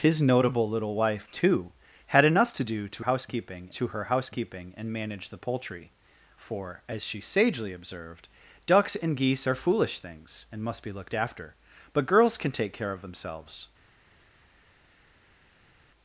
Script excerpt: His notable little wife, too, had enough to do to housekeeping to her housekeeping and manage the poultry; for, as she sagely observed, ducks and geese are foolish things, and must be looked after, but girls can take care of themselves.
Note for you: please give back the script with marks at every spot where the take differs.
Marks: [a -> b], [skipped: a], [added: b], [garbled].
His notable little wife, too, had enough to do to housekeeping to her housekeeping and manage the poultry; for, as she sagely observed, ducks and geese are foolish things, and must be looked after, but girls can take care of themselves.